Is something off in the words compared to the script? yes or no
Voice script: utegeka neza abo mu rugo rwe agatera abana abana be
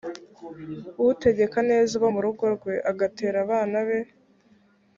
yes